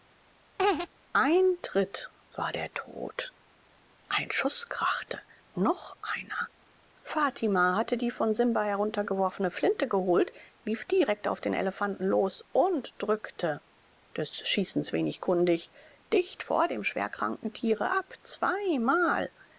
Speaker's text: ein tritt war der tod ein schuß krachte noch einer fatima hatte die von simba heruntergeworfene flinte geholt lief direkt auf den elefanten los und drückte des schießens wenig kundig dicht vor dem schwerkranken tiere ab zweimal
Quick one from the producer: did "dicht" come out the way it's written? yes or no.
yes